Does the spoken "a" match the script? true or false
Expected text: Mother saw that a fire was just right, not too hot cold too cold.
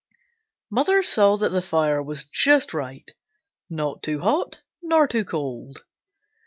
false